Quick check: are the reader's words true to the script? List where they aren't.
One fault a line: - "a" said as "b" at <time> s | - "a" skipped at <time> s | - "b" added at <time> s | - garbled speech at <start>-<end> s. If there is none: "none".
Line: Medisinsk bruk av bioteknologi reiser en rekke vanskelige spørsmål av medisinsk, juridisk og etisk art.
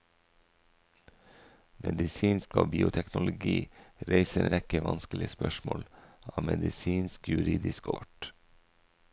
- "bruk" skipped at 2.5 s
- "en" skipped at 4.5 s
- "og etisk" skipped at 7.9 s